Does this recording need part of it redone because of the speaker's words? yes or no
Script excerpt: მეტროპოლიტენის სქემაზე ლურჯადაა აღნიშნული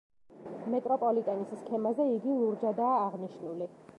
yes